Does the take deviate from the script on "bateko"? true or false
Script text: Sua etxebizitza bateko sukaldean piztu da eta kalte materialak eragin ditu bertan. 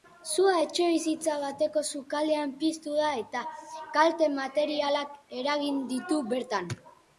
false